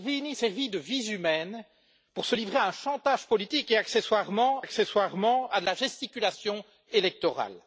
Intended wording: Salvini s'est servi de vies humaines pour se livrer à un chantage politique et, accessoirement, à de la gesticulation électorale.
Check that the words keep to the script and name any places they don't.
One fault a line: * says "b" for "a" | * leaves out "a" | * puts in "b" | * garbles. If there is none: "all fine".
* leaves out "s'est"
* puts in "accessoirement"